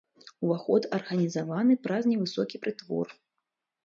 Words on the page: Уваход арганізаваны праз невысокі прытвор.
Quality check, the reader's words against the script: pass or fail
pass